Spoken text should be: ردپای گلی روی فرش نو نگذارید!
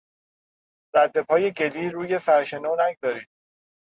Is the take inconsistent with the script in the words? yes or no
no